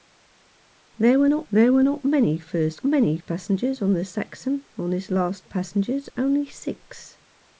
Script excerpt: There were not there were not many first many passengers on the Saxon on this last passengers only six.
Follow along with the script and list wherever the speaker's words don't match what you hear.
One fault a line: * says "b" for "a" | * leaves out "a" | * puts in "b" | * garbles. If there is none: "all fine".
all fine